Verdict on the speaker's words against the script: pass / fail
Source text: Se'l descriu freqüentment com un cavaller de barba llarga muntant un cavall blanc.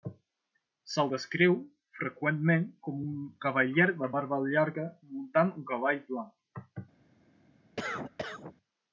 pass